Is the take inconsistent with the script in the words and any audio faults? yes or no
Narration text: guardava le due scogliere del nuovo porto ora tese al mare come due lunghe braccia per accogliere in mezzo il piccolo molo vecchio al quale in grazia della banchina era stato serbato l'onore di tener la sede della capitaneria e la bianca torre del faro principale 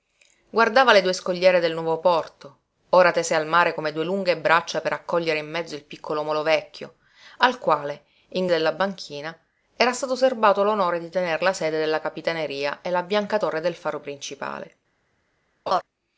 yes